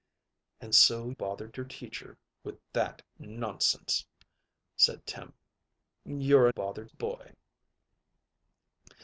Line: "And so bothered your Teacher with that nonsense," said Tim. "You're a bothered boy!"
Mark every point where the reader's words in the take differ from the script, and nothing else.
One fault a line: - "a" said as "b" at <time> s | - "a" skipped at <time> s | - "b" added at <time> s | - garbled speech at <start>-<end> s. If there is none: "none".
none